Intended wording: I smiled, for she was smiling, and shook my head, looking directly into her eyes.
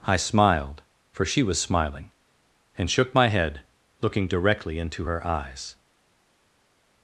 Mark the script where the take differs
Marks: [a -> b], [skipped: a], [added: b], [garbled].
I smiled, for she was smiling, and shook my head, looking directly into her eyes.